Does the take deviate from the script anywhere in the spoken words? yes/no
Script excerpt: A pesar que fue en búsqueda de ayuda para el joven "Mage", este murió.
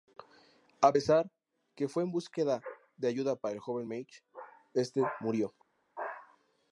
no